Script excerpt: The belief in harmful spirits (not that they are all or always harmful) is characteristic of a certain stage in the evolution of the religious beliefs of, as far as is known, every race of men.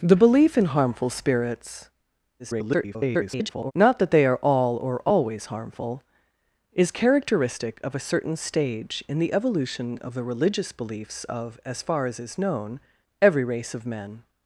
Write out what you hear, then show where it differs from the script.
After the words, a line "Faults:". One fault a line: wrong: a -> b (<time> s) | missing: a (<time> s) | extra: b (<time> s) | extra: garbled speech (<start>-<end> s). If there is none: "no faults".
The belief in harmful spirits [garbled] (not that they are all or always harmful) is characteristic of a certain stage in the evolution of the religious beliefs of, as far as is known, every race of men.
Faults:
extra: garbled speech (2.4-3.7 s)